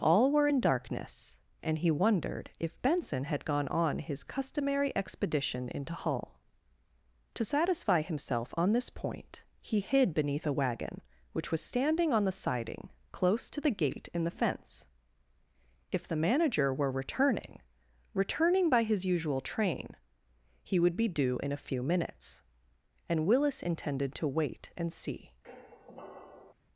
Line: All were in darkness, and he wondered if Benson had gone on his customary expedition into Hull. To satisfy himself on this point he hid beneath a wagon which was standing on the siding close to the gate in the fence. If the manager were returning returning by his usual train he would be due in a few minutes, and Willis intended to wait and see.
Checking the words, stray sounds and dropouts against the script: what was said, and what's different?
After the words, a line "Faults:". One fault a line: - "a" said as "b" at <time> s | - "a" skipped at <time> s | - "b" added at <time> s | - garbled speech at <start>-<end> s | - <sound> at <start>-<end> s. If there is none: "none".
All were in darkness, and he wondered if Benson had gone on his customary expedition into Hull. To satisfy himself on this point he hid beneath a wagon which was standing on the siding close to the gate in the fence. If the manager were returning returning by his usual train he would be due in a few minutes, and Willis intended to wait and see.
Faults:
- squeak at 25.4-26.5 s